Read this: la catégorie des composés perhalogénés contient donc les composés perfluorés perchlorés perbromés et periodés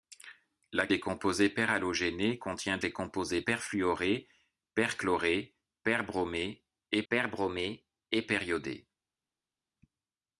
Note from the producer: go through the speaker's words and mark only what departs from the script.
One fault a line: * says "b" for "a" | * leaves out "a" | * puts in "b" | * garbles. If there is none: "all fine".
* leaves out "catégorie"
* leaves out "donc"
* puts in "perbromés et"